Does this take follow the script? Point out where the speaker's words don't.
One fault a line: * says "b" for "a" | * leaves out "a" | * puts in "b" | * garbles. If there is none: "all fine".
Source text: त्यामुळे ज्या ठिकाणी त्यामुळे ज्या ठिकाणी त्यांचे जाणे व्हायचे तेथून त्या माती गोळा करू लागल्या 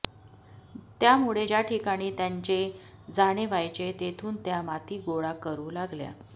* leaves out "त्यामुळे ज्या ठिकाणी"